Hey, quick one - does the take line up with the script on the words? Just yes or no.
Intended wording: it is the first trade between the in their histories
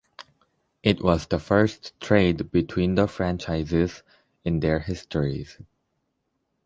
no